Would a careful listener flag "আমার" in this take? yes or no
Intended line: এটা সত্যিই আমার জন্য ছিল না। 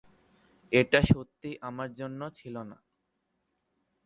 no